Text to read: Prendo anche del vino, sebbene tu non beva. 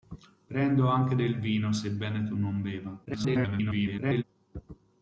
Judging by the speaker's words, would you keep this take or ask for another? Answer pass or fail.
fail